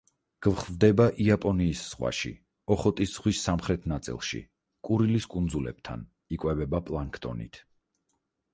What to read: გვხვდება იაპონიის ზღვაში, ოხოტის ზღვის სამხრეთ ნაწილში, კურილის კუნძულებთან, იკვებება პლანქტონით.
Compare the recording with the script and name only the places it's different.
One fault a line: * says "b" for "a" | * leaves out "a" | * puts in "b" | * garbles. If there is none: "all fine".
all fine